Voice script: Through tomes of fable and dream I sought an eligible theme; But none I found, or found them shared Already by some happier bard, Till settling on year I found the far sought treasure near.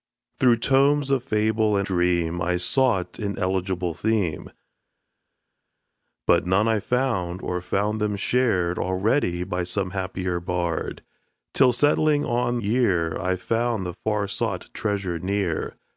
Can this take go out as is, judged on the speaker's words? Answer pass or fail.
pass